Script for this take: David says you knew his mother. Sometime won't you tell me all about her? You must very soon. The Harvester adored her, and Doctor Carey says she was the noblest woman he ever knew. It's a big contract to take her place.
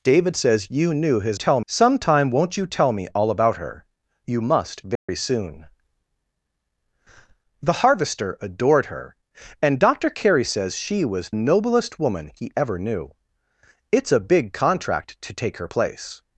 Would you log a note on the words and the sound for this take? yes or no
yes